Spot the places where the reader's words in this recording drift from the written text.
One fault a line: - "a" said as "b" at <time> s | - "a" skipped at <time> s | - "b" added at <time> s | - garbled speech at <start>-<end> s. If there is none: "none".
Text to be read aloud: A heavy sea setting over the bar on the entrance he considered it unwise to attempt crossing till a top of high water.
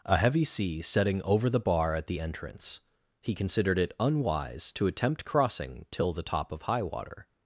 - "on" said as "at" at 1.9 s
- "a" said as "the" at 6.1 s